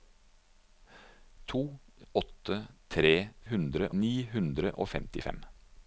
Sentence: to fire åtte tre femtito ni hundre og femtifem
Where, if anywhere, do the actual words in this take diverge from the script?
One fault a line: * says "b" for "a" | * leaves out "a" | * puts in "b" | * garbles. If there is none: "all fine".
* leaves out "fire"
* says "hundre" for "femtito"